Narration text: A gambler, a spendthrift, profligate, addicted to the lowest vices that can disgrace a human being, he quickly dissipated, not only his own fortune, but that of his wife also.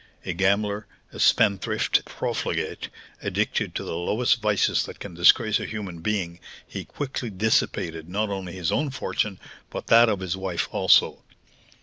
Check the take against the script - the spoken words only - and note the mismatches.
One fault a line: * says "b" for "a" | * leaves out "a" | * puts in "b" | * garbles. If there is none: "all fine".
all fine